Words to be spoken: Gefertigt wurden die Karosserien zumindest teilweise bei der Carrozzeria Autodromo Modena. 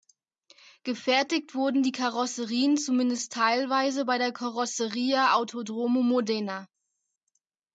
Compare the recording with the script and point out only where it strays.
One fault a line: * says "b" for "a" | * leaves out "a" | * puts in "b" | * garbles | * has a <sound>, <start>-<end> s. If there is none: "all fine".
all fine